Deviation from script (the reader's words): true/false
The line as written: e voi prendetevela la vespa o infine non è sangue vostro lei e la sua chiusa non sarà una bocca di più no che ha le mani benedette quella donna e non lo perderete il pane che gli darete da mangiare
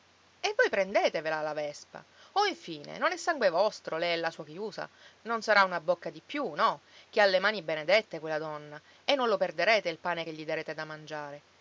false